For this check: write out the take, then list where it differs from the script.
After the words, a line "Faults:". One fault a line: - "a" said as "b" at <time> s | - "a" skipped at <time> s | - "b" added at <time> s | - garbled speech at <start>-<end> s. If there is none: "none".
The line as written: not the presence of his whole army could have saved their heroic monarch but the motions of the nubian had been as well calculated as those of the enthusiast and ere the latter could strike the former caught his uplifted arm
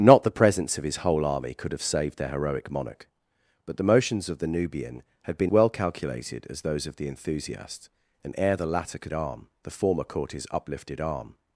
not the presence of his whole army could have saved their heroic monarch but the motions of the nubian had been well calculated as those of the enthusiast and ere the latter could arm the former caught his uplifted arm
Faults:
- "as" skipped at 5.5 s
- "strike" said as "arm" at 9.1 s